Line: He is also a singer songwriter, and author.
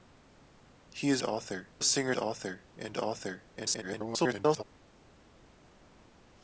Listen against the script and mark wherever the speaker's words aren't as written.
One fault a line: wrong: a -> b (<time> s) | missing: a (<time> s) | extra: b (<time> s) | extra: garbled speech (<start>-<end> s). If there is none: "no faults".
wrong: also -> author (1.2 s)
wrong: songwriter -> author (2.2 s)
extra: garbled speech (3.6-4.6 s)